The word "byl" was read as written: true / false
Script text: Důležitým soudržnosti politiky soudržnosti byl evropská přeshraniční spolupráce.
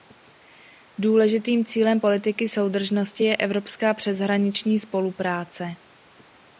false